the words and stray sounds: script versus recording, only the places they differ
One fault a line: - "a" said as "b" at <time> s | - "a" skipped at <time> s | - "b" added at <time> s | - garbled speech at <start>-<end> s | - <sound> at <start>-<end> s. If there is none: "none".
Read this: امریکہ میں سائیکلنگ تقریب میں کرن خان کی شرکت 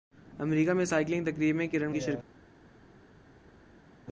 - "خان" skipped at 1.9 s